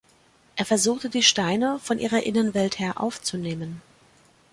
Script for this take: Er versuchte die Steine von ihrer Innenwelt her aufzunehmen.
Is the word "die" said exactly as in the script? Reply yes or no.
yes